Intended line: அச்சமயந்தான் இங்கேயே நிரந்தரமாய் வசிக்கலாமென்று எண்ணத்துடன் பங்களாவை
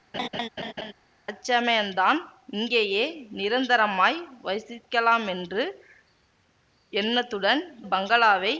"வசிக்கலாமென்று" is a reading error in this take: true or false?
false